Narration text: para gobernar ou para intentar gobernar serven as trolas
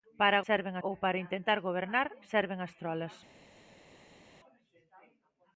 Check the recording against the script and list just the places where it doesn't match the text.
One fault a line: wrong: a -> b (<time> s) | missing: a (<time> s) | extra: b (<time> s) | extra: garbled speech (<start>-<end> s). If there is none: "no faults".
wrong: gobernar -> serven (0.5 s)